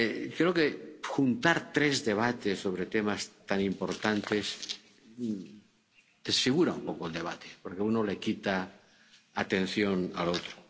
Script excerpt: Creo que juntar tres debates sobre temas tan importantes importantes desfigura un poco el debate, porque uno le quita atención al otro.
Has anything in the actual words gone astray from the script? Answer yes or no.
yes